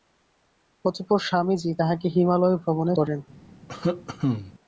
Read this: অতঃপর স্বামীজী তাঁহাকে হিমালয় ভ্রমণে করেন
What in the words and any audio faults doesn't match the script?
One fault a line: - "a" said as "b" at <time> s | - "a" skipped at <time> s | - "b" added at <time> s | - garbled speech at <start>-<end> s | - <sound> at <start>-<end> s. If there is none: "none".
- cough at 3.7-4.5 s